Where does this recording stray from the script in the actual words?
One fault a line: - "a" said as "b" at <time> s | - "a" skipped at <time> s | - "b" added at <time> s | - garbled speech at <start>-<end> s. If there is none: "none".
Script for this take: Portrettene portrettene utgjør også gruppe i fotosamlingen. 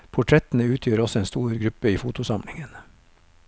- "portrettene" skipped at 0.7 s
- "en stor" added at 1.2 s